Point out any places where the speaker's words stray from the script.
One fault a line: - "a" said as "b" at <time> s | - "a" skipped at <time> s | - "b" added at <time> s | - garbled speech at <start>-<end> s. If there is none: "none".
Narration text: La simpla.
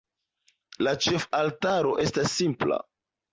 - "ĉefaltaro estas" added at 1.1 s